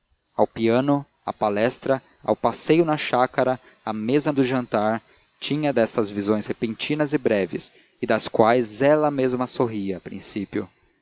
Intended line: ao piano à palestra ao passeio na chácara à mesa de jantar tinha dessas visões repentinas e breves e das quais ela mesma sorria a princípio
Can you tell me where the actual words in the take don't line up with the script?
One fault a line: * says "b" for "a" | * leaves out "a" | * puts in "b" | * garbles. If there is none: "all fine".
all fine